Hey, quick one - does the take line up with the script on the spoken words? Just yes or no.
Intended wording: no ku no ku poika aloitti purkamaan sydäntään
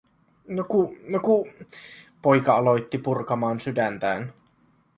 yes